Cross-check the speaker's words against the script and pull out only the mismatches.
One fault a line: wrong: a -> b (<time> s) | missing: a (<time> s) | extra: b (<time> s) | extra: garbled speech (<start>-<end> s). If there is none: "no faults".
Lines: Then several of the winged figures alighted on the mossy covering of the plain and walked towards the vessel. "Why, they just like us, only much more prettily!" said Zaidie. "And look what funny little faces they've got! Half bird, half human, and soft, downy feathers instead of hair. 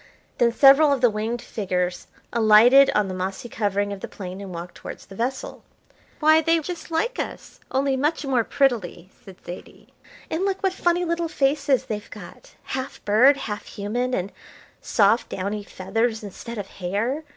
no faults